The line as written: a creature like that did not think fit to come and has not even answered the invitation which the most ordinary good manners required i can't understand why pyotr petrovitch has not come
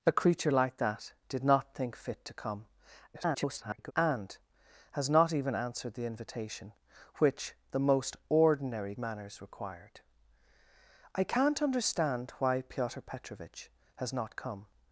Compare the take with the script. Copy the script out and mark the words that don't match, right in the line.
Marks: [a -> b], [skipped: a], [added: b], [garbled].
a creature like that did not think fit to come [garbled] and has not even answered the invitation which the most ordinary [skipped: good] manners required i can't understand why pyotr petrovitch has not come